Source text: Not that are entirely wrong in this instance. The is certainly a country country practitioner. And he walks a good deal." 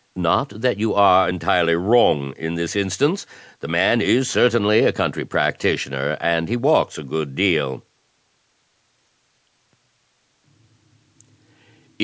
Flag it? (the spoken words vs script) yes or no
yes